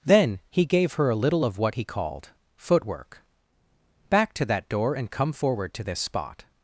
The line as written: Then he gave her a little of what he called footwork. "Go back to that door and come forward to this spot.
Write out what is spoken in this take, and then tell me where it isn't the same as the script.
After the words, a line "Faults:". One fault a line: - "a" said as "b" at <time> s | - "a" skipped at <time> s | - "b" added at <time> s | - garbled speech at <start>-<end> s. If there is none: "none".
Then he gave her a little of what he called footwork. "back to that door and come forward to this spot.
Faults:
- "Go" skipped at 3.2 s